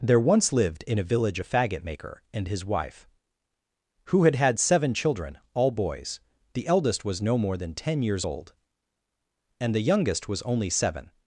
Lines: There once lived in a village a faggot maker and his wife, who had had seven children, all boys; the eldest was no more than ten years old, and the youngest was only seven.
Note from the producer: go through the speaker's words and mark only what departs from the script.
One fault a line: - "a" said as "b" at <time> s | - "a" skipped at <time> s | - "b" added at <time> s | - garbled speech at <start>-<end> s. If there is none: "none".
none